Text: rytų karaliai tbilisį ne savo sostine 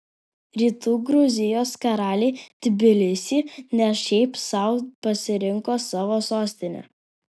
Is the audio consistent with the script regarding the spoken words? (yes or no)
no